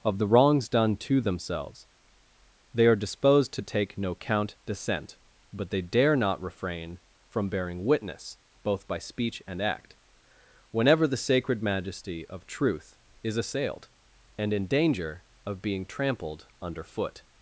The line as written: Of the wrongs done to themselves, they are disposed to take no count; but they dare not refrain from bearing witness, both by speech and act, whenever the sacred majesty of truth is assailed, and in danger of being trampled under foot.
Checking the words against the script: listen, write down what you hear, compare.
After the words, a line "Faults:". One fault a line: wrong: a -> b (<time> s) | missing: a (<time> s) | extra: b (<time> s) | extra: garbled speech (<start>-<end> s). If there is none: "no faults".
Of the wrongs done to themselves, they are disposed to take no count; dissent but they dare not refrain from bearing witness, both by speech and act, whenever the sacred majesty of truth is assailed, and in danger of being trampled under foot.
Faults:
extra: dissent (4.7 s)